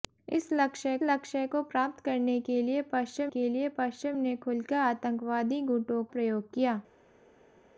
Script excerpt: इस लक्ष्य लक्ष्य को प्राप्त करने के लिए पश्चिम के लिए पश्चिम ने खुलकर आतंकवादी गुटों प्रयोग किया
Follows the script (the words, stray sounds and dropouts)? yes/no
yes